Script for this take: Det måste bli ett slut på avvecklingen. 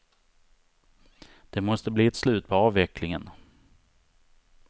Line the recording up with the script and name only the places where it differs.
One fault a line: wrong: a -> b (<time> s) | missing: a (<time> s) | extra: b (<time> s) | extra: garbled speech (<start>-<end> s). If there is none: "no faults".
no faults